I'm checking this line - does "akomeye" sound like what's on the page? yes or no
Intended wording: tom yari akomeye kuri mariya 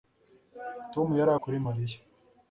no